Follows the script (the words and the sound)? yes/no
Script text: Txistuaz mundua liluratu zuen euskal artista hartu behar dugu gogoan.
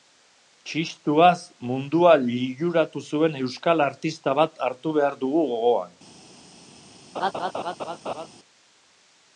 no